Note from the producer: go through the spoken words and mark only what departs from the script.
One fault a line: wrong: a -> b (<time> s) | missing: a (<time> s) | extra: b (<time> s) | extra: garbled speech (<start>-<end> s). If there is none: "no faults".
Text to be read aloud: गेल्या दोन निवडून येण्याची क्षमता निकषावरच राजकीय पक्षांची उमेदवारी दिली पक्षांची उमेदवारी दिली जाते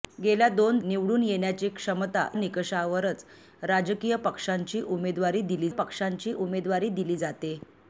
no faults